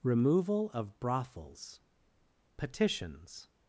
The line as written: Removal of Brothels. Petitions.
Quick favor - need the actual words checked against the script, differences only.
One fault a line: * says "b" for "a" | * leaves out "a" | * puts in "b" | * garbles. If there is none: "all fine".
all fine